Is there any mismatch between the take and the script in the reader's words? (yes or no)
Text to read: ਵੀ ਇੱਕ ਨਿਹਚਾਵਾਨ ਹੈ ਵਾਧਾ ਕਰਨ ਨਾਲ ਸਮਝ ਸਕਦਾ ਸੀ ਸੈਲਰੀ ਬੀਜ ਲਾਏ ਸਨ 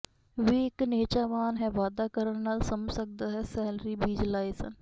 yes